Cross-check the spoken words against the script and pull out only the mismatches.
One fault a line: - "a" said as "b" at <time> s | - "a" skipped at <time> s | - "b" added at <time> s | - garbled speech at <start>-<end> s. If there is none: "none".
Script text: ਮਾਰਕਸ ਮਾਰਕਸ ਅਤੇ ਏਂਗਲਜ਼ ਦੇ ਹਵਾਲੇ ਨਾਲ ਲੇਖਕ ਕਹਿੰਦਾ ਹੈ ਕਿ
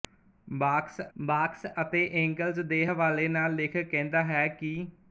none